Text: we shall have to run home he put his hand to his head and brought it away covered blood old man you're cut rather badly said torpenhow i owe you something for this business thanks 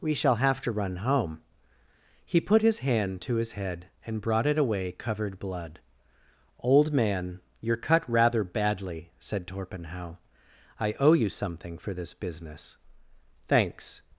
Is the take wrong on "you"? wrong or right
right